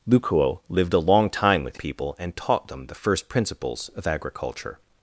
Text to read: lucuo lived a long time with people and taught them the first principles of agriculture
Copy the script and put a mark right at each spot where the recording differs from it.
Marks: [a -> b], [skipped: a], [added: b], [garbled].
lucuo lived a long time with people and taught them the first principles of agriculture